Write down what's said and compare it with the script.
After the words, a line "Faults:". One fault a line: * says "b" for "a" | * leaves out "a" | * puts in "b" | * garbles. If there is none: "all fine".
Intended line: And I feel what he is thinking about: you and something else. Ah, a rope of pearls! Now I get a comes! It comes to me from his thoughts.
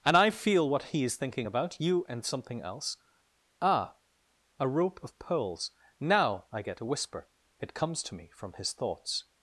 And I feel what he is thinking about: you and something else. Ah, a rope of pearls! Now I get a whisper! It comes to me from his thoughts.
Faults:
* says "whisper" for "comes"